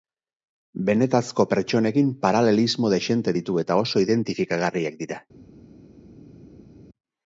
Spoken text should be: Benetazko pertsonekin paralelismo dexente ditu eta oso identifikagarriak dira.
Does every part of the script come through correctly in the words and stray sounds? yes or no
yes